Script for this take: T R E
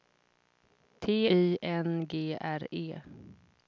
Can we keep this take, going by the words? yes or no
no